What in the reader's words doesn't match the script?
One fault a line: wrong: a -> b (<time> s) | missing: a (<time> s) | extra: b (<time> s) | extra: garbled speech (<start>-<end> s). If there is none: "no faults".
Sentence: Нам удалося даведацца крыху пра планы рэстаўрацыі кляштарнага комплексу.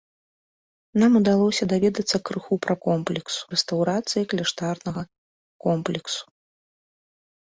wrong: планы -> комплексу (2.9 s)